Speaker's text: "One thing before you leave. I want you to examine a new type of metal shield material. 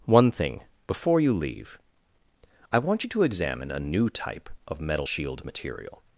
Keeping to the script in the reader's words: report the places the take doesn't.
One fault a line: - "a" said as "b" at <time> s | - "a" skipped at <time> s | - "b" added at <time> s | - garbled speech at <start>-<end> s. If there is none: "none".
none